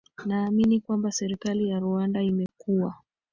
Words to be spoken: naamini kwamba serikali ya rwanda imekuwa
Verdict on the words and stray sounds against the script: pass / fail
fail